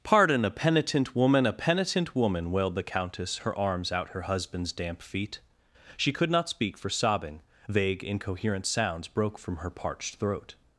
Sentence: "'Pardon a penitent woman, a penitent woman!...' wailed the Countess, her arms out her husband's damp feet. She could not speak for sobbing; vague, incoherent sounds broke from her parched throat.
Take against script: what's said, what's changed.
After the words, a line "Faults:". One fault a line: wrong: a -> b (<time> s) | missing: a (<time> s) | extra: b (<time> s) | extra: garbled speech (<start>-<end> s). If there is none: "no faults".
"'Pardon a penitent woman, a penitent woman!...' wailed the Countess, her arms out her husband's damp feet. She could not speak for sobbing; vague, incoherent sounds broke from her parched throat.
Faults:
no faults